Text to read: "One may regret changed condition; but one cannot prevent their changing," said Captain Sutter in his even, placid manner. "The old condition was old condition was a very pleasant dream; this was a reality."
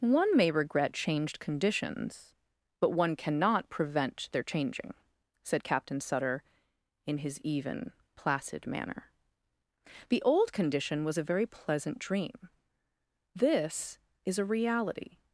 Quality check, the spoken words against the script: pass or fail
fail